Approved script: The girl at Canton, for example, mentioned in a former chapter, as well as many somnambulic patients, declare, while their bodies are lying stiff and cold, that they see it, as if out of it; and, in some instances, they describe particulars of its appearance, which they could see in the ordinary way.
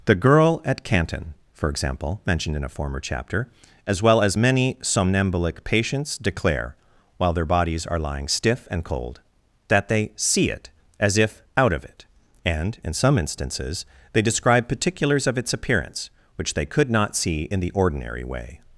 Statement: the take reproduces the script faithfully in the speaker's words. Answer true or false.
false